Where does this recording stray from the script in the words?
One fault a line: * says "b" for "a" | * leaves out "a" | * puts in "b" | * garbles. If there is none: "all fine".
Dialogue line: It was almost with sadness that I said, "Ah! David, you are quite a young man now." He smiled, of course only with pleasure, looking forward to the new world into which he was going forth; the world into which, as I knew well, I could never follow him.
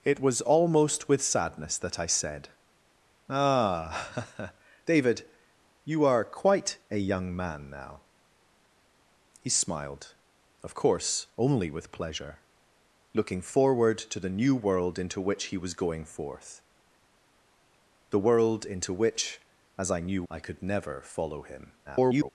* leaves out "well"
* garbles